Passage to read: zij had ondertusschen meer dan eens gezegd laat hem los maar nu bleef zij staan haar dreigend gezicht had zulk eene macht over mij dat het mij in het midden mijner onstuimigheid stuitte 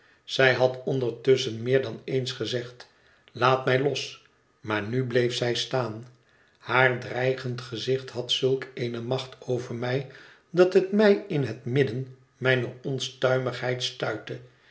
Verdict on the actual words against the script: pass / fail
fail